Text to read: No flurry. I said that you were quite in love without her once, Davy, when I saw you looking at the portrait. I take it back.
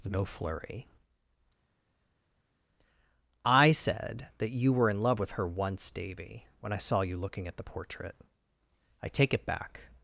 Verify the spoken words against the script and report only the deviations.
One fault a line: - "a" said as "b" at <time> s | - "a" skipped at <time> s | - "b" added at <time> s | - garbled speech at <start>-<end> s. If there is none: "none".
- "quite" skipped at 4.9 s
- "without" said as "with" at 5.2 s